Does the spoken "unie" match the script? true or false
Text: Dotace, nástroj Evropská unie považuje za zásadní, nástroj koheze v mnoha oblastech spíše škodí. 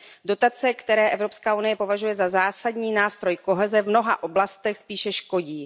true